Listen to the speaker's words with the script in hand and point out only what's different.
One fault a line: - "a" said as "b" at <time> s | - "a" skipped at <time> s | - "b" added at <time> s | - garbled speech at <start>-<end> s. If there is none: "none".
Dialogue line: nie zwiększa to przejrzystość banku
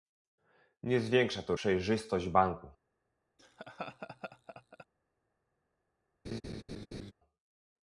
none